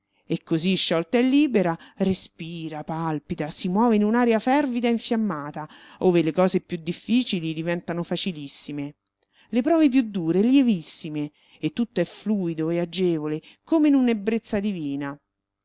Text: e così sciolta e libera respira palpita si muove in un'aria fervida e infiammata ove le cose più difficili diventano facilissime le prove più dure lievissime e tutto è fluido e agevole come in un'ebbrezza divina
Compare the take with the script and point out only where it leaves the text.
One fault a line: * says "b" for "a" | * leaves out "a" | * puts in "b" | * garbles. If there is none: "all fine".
all fine